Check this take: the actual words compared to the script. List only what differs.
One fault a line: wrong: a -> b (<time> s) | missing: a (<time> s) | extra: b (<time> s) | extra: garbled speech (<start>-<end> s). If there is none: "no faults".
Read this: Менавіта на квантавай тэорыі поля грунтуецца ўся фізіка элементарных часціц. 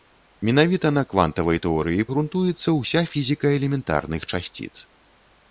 missing: поля (2.1 s)